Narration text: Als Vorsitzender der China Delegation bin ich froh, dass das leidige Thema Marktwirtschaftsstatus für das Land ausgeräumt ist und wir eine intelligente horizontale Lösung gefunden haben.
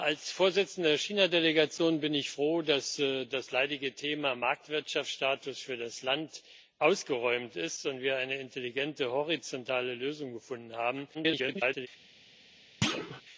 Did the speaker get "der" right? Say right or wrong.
right